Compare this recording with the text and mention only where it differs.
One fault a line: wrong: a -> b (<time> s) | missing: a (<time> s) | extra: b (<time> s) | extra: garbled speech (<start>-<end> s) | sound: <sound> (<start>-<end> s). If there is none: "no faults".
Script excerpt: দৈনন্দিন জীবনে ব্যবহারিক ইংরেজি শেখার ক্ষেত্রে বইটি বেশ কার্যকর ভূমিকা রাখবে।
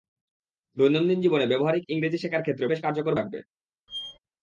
missing: বইটি (2.6 s)
missing: ভূমিকা (3.1 s)
sound: squeak (3.9-4.2 s)